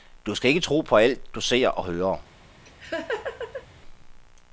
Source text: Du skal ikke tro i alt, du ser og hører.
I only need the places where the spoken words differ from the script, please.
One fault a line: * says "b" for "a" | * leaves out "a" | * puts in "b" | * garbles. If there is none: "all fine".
* says "på" for "i"